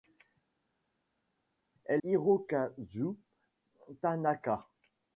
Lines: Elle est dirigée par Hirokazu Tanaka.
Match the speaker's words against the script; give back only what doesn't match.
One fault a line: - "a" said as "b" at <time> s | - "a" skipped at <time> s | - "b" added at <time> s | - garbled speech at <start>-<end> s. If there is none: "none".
- "est dirigée par" skipped at 2.0 s